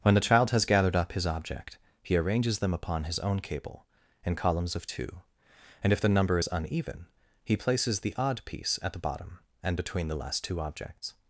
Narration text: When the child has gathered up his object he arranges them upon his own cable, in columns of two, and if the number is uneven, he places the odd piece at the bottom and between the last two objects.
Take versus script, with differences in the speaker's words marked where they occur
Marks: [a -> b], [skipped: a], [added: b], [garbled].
When the child has gathered up his object he arranges them upon his own cable, in columns of two, and if the number is uneven, he places the odd piece at the bottom and between the last two objects.